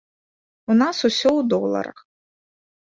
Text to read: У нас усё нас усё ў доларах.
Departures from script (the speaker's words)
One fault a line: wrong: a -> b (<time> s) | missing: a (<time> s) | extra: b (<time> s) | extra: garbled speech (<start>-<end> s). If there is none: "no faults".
missing: нас усё (1.3 s)